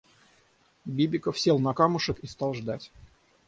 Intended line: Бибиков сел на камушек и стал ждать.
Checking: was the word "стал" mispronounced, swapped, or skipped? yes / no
no